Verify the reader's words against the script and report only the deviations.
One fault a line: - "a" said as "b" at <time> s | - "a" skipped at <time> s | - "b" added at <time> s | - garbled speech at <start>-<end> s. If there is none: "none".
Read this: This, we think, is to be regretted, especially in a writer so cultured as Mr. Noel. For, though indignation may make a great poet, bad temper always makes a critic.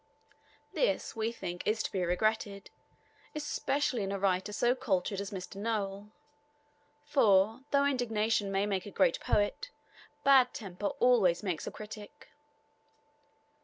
none